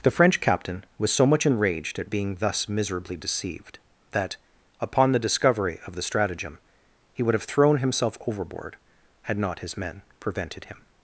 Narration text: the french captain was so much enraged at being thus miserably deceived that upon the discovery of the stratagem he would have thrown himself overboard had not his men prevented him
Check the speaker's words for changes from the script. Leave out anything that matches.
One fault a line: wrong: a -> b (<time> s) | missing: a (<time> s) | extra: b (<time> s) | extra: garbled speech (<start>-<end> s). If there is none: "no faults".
no faults